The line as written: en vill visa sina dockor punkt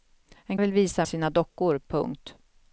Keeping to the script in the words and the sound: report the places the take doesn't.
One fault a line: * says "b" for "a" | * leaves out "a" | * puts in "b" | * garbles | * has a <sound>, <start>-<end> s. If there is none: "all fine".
all fine